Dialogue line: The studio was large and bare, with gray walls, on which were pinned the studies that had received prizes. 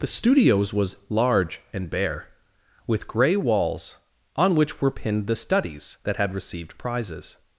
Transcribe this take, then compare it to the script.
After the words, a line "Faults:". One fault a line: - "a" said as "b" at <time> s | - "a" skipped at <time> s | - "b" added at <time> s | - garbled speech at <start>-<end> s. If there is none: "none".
The studios was large and bare, with gray walls, on which were pinned the studies that had received prizes.
Faults:
- "studio" said as "studios" at 0.1 s